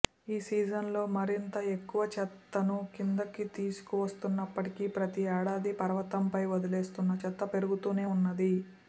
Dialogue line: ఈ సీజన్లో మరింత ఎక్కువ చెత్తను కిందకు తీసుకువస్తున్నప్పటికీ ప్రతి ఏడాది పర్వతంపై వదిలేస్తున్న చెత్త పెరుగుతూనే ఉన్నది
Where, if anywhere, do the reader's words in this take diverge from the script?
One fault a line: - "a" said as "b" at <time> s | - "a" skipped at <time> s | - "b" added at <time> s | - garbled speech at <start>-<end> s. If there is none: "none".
none